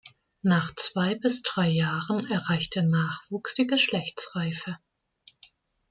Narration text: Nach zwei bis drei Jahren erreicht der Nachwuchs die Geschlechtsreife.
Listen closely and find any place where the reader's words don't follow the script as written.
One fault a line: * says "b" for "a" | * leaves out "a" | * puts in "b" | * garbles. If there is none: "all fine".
all fine